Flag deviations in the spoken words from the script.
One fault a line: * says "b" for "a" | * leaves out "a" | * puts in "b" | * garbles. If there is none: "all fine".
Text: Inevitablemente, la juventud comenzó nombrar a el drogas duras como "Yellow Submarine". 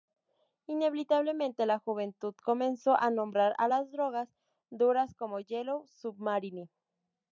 * puts in "a"
* says "las" for "el"